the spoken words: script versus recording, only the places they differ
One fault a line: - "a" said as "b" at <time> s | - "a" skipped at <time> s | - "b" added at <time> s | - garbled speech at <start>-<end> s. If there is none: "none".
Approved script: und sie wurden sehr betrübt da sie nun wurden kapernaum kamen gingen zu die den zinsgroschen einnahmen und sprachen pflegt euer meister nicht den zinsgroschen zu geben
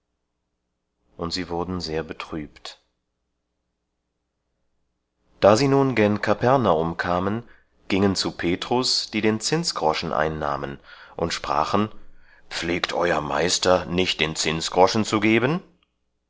- "wurden" said as "gen" at 6.0 s
- "petrus" added at 8.3 s